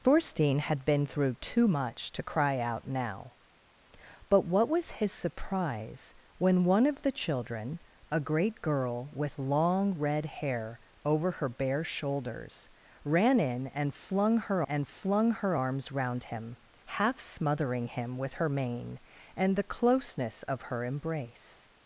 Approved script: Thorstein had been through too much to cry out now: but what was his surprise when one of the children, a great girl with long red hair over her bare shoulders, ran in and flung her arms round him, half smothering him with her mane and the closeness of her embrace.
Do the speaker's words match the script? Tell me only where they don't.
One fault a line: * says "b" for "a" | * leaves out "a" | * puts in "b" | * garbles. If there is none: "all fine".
* puts in "and flung her"